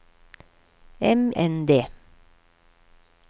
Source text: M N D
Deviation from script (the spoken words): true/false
false